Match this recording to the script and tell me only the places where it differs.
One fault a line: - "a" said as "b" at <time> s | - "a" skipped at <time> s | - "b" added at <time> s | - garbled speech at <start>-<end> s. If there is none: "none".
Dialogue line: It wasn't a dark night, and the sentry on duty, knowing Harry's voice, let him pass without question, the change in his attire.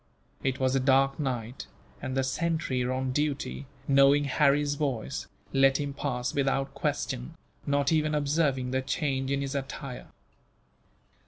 - "wasn't" said as "was" at 0.6 s
- "not even observing" added at 7.7 s